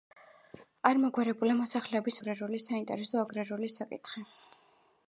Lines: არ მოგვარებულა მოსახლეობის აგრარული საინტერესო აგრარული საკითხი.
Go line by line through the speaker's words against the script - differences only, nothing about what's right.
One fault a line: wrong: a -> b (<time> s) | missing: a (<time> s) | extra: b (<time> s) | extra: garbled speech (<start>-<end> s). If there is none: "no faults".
no faults